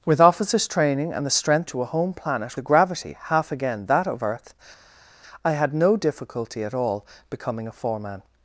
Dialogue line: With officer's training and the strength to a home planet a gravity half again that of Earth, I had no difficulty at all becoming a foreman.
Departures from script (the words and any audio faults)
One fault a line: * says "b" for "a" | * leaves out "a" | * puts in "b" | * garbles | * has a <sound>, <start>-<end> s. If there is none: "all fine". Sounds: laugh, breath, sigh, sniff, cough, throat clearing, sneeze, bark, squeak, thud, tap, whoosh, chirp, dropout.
all fine